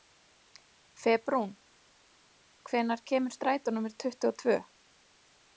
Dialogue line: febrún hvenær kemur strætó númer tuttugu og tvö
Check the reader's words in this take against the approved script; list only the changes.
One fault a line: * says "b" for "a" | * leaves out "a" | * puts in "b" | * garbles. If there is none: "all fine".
all fine